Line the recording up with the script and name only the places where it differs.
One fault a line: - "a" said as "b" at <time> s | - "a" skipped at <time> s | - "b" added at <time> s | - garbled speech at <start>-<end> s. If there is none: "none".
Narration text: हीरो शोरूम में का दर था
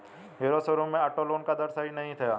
- "ऑटो लोन" added at 1.0 s
- "सही नहीं" added at 1.7 s